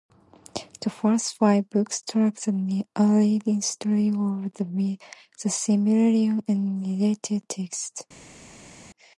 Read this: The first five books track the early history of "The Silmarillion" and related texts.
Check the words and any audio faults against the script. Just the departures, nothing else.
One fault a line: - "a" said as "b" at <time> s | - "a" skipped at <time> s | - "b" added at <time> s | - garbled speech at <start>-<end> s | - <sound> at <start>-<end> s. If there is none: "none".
none